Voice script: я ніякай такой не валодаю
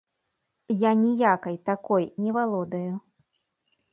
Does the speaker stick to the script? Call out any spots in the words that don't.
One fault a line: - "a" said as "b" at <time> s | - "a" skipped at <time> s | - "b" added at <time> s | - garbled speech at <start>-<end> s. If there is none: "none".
none